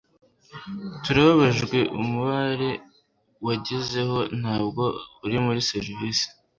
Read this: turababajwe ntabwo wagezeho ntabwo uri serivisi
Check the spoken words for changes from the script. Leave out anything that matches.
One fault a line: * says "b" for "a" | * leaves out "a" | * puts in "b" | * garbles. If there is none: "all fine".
* says "umubare" for "ntabwo"
* puts in "muri"